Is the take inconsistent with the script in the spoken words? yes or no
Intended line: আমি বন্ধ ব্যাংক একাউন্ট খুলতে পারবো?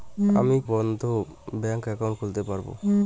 no